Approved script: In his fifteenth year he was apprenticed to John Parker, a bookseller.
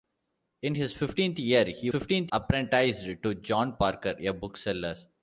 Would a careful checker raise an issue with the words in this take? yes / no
yes